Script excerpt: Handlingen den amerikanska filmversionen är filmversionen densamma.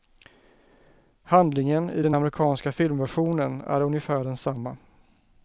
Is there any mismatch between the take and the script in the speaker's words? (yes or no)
yes